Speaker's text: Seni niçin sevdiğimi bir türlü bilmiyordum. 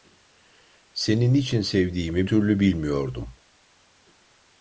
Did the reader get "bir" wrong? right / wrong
wrong